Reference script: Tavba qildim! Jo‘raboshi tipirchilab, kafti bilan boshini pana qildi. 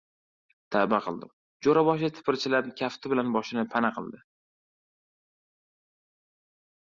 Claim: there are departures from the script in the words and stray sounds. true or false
false